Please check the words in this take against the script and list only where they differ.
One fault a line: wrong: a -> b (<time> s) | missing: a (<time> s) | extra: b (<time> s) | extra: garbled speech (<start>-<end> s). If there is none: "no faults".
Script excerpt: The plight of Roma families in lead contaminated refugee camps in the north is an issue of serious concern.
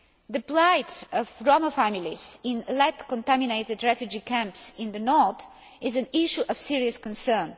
no faults